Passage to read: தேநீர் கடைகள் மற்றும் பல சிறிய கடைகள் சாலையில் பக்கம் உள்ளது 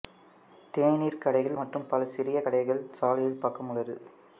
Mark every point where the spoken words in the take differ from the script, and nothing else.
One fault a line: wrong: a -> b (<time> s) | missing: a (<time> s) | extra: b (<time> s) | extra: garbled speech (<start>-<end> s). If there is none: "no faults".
no faults